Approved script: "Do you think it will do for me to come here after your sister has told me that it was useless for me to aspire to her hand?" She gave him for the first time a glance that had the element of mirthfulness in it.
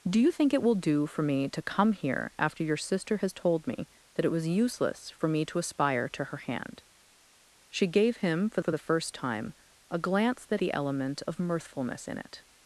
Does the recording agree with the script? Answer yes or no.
no